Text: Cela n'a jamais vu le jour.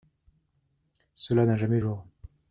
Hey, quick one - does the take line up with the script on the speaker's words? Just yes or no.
no